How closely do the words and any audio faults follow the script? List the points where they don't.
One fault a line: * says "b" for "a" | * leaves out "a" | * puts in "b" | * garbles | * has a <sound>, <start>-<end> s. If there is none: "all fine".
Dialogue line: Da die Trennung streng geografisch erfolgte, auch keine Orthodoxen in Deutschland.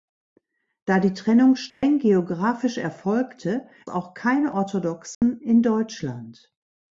* has a dropout, 1.7-1.8 s
* has a dropout, 5.1-5.2 s